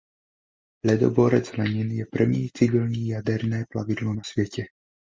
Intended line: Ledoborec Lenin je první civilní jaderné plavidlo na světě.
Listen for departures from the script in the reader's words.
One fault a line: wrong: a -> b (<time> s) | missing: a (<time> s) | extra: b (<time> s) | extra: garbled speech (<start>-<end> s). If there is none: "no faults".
no faults